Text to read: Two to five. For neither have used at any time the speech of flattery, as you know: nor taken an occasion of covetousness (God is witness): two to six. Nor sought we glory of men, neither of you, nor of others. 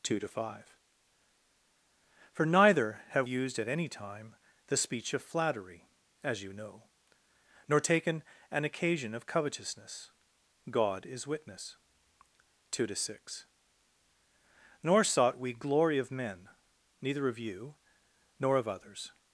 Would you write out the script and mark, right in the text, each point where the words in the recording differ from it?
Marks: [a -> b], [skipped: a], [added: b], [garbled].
Two to five. For neither have used at any time the speech of flattery, as you know: nor taken an occasion of covetousness (God is witness): two to six. Nor sought we glory of men, neither of you, nor of others.